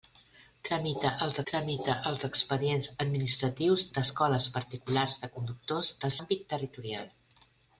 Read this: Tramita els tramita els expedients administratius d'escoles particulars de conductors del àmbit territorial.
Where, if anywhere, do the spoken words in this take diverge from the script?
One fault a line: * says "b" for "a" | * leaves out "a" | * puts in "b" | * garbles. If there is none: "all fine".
all fine